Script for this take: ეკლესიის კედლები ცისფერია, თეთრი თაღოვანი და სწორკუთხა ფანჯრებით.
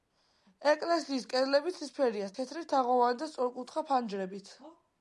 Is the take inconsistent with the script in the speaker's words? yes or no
no